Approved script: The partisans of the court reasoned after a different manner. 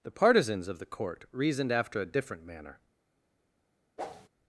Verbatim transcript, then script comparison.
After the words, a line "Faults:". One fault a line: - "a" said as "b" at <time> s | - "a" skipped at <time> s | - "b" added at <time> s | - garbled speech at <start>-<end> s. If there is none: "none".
The partisans of the court reasoned after a different manner.
Faults:
none